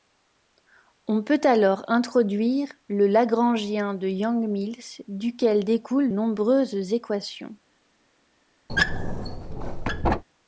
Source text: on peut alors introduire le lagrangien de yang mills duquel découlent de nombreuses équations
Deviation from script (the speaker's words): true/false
true